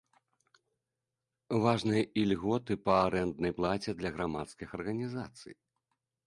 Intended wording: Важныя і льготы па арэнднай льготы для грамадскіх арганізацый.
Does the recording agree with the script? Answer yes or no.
no